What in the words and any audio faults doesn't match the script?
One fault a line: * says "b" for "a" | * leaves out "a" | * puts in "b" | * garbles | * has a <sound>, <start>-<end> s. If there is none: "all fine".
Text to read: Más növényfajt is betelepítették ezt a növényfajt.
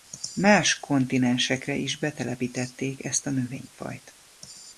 * says "kontinensekre" for "növényfajt"